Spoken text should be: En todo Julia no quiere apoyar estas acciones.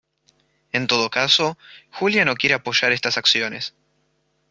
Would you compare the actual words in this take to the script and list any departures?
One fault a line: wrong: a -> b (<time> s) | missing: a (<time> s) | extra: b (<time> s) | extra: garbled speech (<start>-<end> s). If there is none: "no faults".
extra: caso (1.1 s)